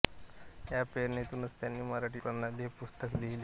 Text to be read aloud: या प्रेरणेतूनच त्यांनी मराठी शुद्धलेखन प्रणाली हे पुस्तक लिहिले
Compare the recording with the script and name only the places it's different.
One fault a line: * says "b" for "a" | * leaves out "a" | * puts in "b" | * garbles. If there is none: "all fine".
* leaves out "शुद्धलेखन"